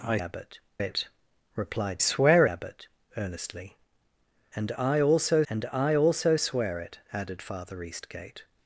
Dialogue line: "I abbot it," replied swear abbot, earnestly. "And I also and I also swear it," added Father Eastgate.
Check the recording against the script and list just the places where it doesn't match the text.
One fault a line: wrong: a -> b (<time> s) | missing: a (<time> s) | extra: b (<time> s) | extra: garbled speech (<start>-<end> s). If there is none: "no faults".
no faults